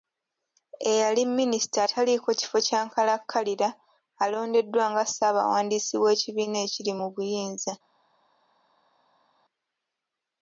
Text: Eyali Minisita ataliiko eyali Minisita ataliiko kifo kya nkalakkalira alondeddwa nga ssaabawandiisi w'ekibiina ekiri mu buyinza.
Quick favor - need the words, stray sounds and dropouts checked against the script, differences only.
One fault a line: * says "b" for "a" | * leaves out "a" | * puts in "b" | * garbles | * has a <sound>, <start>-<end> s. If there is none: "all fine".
* leaves out "eyali Minisita ataliiko"